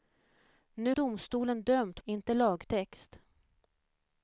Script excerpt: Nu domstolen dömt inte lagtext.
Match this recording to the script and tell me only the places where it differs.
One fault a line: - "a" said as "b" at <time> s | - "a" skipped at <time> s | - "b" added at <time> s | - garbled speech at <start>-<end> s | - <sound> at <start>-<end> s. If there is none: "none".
none